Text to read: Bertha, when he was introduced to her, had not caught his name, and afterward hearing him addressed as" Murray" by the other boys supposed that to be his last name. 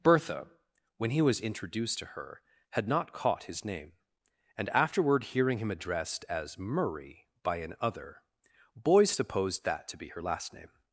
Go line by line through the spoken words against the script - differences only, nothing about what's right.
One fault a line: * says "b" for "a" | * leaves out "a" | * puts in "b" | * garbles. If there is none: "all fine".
* says "an" for "the"
* says "her" for "his"